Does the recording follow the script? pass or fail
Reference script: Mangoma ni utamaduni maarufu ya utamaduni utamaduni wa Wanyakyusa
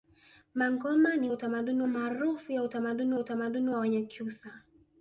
pass